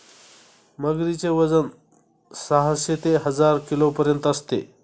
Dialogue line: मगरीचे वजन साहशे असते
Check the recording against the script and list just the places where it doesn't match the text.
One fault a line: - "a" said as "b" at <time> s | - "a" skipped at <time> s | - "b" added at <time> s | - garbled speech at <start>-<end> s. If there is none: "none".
- "ते हजार किलोपर्यंत" added at 2.9 s